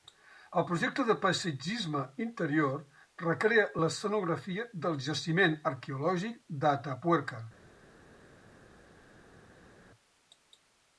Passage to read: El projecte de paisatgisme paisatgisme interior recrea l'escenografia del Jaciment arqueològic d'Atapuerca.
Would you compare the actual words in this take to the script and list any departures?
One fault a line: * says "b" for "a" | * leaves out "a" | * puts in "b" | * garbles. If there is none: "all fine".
* leaves out "paisatgisme"